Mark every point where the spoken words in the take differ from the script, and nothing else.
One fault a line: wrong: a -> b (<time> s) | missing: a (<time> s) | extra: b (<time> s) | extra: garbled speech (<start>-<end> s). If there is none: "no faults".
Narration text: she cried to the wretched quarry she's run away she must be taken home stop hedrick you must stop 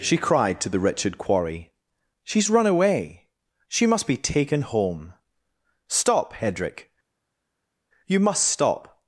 no faults